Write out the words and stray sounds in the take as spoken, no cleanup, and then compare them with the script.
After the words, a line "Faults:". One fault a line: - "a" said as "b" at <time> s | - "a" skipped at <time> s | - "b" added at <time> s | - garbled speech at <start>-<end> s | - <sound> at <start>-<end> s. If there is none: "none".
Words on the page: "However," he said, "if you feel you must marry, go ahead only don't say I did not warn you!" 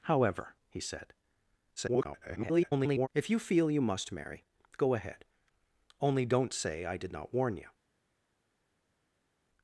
"However," he said, [garbled] "if you feel you must marry, go ahead only don't say I did not warn you!"
Faults:
- garbled speech at 1.8-3.1 s